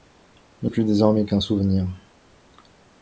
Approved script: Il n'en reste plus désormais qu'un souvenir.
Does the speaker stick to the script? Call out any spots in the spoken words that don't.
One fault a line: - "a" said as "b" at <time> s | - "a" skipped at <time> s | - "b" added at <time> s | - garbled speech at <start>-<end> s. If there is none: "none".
- "n'en reste" skipped at 0.7 s